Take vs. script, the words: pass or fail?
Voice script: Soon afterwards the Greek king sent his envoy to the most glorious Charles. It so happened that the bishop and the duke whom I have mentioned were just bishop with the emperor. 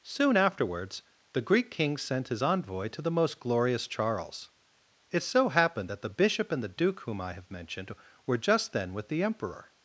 fail